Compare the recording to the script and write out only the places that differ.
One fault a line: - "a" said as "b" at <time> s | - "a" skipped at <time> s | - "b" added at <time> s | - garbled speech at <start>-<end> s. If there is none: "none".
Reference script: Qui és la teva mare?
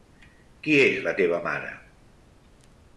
none